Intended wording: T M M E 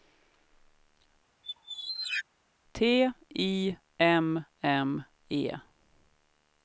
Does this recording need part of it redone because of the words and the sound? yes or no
yes